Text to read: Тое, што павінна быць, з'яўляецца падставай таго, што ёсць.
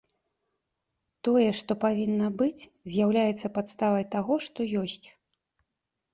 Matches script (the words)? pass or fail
pass